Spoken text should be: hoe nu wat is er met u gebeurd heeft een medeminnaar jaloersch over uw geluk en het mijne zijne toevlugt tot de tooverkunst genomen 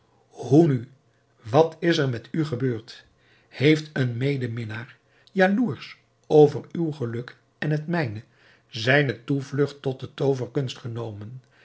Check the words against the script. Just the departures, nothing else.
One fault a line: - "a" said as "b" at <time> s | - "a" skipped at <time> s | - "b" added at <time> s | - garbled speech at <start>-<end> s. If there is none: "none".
none